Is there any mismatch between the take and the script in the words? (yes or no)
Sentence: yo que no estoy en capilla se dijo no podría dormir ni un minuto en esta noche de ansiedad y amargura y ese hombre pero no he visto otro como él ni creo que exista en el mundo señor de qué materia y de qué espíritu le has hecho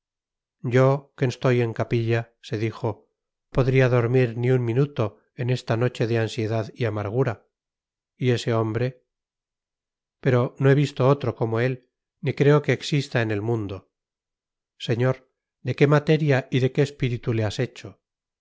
yes